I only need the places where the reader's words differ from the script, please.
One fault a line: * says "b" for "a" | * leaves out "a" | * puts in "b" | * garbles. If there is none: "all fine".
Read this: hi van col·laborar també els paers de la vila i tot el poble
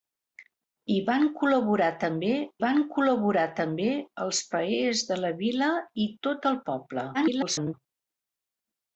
* puts in "van col·laborar també"
* garbles